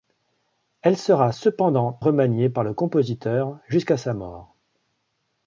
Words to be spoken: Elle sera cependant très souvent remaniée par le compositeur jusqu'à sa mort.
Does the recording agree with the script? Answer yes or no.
no